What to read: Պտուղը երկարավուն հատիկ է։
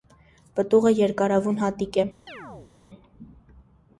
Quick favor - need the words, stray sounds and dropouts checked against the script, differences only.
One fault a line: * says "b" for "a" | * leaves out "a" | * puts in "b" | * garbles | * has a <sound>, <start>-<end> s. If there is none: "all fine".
* has a chirp, 2.3-2.7 s